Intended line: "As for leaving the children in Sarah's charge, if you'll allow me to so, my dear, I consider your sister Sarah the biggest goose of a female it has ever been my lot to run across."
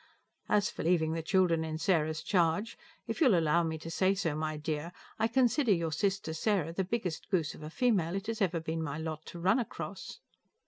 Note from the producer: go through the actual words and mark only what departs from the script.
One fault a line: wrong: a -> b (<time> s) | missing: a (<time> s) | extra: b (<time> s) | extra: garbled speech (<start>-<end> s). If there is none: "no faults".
extra: say (3.9 s)